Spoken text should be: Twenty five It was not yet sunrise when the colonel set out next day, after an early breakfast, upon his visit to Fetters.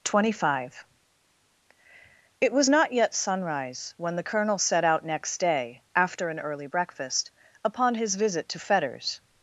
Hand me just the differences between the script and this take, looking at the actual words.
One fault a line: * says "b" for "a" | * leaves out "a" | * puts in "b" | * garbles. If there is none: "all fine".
all fine